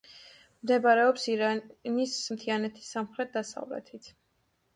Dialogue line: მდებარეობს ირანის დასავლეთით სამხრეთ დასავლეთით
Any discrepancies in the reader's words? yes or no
yes